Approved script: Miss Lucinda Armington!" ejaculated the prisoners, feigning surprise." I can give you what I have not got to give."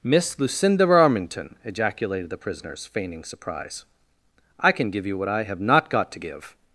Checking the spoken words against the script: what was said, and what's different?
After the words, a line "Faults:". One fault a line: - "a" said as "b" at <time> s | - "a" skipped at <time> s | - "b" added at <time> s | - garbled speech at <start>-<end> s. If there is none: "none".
Miss Lucinda Armington!" ejaculated the prisoners, feigning surprise." I can give you what I have not got to give."
Faults:
none